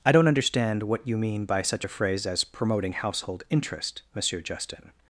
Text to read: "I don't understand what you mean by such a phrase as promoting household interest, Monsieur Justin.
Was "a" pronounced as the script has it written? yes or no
yes